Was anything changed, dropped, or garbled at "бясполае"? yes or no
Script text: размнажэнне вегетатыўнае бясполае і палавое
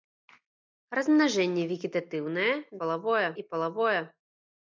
yes